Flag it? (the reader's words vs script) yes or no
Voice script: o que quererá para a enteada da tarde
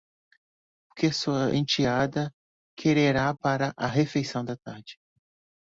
yes